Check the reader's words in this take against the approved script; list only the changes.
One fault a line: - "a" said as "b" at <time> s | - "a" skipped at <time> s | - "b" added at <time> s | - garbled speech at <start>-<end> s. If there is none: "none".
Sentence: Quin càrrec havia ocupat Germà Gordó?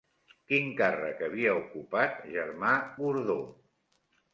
none